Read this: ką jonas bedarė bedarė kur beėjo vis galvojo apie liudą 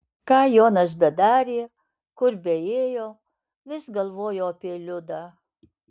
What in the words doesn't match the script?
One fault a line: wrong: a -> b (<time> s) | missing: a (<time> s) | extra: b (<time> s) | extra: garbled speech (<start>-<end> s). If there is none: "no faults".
missing: bedarė (1.6 s)